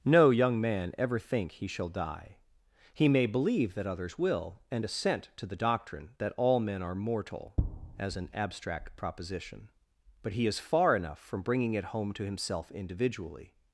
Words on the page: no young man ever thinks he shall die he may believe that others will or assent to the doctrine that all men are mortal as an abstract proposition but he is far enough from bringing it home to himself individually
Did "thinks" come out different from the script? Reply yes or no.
yes